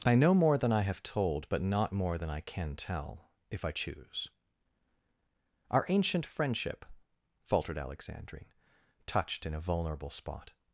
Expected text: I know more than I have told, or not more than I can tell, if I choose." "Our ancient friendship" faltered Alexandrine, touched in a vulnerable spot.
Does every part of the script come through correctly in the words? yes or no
no